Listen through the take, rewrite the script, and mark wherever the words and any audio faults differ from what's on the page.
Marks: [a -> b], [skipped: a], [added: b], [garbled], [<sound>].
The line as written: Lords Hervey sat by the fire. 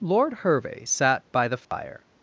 [Lords -> Lord] Hervey sat by the fire. [dropout]